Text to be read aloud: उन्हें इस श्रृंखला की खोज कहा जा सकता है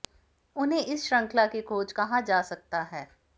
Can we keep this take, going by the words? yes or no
yes